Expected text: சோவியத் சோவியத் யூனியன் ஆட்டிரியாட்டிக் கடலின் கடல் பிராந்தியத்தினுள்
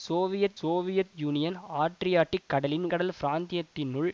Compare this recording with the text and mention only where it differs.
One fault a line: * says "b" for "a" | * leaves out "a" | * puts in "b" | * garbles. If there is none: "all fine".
all fine